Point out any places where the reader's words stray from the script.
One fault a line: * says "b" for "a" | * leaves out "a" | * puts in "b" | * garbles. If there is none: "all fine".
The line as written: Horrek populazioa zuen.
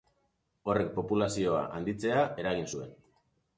* puts in "handitzea eragin"